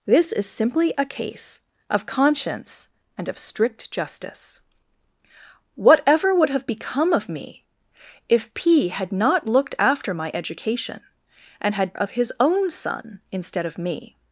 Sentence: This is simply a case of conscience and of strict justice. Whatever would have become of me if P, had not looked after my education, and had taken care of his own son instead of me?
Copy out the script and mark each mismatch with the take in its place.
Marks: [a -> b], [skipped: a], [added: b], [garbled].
This is simply a case of conscience and of strict justice. Whatever would have become of me if P, had not looked after my education, and had [skipped: taken care] of his own son instead of me?